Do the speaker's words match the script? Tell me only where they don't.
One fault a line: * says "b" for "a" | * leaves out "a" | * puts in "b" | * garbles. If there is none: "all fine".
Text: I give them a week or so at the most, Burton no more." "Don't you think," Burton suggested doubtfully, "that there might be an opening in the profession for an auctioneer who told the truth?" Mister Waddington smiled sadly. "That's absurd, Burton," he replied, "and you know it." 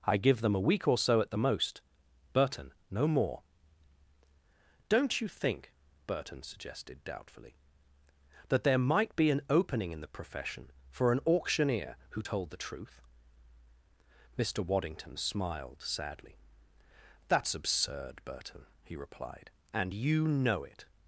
all fine